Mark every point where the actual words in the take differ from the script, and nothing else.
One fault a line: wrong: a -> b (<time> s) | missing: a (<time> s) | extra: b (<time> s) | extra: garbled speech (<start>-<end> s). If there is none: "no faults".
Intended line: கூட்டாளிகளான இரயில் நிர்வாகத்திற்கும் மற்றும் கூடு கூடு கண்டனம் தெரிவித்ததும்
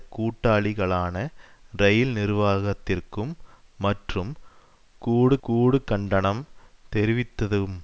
no faults